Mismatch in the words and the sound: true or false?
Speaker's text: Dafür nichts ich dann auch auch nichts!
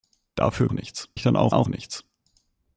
false